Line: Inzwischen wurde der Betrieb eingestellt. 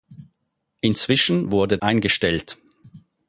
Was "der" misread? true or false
true